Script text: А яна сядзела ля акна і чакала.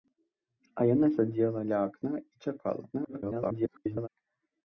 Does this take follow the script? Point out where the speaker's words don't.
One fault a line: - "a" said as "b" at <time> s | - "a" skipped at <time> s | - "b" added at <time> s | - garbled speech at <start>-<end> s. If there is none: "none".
- garbled speech at 2.9-4.1 s